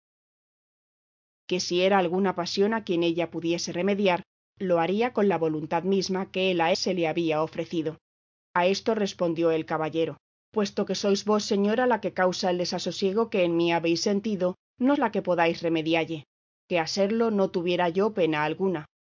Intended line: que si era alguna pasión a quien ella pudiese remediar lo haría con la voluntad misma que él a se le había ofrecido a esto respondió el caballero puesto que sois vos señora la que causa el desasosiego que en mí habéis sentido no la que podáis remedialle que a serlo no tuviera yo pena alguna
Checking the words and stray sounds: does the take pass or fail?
pass